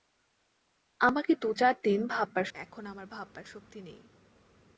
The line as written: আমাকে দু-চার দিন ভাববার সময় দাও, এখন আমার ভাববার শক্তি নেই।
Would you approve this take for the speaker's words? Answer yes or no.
no